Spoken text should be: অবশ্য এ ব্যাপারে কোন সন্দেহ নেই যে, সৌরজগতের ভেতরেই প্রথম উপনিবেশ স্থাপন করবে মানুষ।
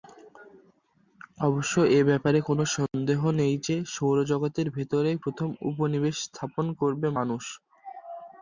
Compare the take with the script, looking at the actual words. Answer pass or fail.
pass